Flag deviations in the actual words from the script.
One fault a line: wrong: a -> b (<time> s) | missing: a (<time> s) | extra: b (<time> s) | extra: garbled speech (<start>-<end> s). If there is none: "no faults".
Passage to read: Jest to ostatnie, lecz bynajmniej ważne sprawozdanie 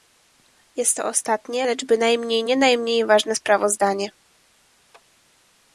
extra: nie najmniej (2.4 s)